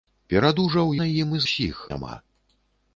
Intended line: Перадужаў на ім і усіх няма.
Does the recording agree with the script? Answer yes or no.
yes